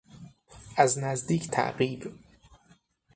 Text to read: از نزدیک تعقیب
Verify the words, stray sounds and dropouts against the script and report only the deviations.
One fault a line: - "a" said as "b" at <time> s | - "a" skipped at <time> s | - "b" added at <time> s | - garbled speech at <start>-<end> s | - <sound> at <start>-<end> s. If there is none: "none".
none